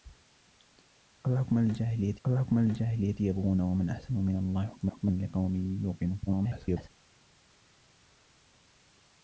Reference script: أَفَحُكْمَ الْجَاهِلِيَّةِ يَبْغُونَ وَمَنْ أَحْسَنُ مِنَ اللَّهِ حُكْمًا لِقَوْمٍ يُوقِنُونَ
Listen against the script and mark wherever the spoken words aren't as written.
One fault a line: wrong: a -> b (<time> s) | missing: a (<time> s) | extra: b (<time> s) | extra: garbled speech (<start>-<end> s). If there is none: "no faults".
extra: أَفَحُكْمَ الْجَاهِلِيَّةِ (2.3 s)
extra: حُكْمًا (4.9 s)
extra: garbled speech (6.3-6.9 s)